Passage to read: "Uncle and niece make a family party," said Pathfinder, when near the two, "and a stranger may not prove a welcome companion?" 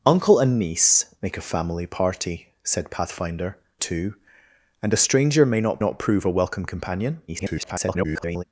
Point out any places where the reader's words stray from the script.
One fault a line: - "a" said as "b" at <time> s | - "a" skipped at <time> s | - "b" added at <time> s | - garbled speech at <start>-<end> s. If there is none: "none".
- "when near the" skipped at 3.6 s
- "not" added at 5.8 s
- garbled speech at 7.3-8.4 s